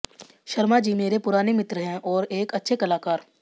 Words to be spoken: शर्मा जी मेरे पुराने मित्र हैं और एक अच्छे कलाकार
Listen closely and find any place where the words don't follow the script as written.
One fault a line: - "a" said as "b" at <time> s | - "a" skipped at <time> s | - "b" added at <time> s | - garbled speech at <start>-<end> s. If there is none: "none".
none